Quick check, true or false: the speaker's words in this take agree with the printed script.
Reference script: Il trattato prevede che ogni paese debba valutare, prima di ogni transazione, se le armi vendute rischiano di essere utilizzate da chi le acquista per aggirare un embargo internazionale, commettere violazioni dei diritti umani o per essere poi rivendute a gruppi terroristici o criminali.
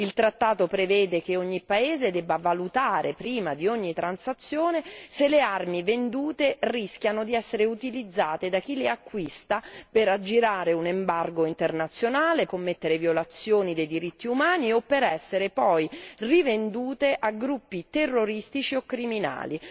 true